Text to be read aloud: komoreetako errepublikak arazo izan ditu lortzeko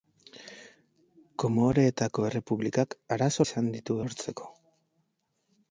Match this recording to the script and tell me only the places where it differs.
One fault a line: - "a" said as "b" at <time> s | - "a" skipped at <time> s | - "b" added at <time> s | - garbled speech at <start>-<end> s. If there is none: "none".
none